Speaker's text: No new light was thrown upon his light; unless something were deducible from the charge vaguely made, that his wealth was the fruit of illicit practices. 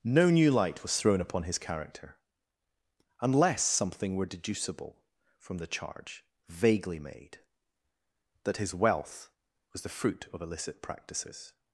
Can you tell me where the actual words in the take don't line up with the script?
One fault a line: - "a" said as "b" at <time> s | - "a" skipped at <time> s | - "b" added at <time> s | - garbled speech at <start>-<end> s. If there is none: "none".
- "light" said as "character" at 1.6 s